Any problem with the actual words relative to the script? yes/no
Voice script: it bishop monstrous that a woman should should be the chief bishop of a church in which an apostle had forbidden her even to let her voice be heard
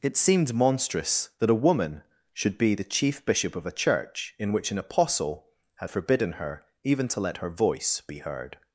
yes